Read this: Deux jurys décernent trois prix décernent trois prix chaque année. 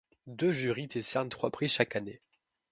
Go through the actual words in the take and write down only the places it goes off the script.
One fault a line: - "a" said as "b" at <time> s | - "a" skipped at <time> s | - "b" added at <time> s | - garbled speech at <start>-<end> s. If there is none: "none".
- "décernent trois prix" skipped at 1.7 s